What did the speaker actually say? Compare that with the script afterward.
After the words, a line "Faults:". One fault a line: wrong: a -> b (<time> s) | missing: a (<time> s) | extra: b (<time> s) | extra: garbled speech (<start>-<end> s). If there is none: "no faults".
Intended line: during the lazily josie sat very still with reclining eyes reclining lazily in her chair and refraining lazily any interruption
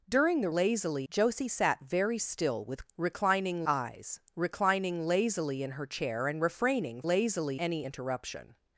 during the lazily josie sat very still with reclining eyes reclining lazily in her chair and refraining lazily any interruption
Faults:
no faults